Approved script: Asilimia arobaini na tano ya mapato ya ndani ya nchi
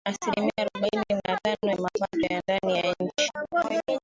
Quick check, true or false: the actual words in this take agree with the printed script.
true